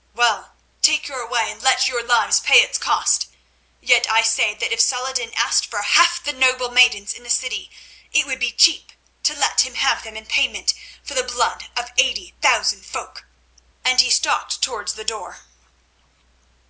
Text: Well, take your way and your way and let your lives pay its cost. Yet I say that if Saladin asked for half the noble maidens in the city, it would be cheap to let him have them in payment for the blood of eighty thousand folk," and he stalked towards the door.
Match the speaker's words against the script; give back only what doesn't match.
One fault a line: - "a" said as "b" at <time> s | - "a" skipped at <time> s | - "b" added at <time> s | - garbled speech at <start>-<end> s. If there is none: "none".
- "your way and" skipped at 1.6 s